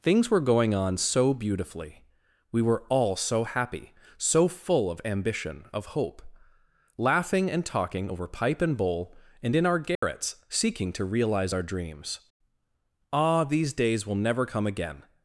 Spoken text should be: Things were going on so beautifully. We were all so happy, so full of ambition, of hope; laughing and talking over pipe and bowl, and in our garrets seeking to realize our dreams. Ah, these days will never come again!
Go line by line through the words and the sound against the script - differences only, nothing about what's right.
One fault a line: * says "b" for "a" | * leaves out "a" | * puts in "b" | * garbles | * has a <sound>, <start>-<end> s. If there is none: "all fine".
* has a dropout, 10.0-10.0 s